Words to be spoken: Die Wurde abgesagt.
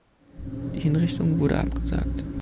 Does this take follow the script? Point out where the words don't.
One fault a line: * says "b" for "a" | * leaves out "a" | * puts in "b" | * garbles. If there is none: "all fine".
* puts in "Hinrichtung"